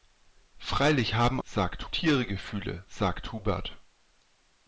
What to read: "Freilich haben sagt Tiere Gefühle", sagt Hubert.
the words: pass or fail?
pass